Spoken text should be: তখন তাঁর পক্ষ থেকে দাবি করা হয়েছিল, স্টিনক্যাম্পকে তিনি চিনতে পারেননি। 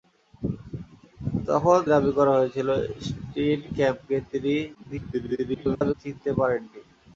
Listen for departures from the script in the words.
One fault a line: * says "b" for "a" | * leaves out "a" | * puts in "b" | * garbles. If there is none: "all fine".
* leaves out "তাঁর পক্ষ থেকে"
* garbles